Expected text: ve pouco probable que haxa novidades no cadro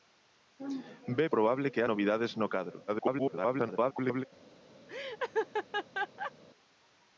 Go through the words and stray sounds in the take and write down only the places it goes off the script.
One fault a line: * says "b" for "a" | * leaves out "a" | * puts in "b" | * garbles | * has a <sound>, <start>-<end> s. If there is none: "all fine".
* leaves out "pouco"
* leaves out "haxa"
* garbles
* has a laugh, 4.9-6.3 s